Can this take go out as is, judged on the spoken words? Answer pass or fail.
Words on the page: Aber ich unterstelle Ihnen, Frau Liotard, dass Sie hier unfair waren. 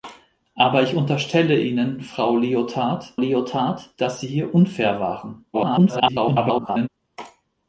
fail